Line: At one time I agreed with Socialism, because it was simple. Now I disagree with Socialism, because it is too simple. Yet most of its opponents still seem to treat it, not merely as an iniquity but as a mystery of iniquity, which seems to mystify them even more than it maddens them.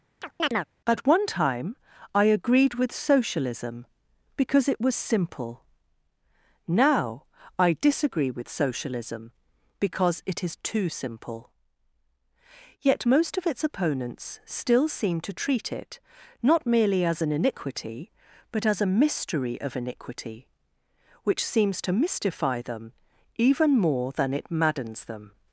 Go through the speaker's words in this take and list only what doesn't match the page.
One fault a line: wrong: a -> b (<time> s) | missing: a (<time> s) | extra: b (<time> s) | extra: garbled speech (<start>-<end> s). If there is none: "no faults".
no faults